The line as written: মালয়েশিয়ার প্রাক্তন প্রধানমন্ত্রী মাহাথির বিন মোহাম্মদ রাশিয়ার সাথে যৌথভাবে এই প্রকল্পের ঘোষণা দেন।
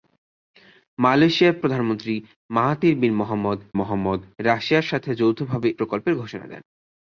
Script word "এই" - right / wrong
wrong